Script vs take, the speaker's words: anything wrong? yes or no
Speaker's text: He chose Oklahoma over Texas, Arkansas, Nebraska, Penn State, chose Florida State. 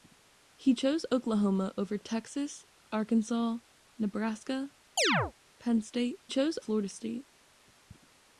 no